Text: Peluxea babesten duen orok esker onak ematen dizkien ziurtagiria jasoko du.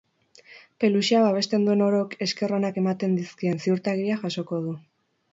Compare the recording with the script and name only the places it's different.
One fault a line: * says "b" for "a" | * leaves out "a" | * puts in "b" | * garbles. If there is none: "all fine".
all fine